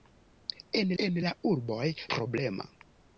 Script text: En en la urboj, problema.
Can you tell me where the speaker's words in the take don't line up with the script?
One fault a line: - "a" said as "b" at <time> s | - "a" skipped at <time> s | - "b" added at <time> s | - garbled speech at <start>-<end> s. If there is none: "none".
none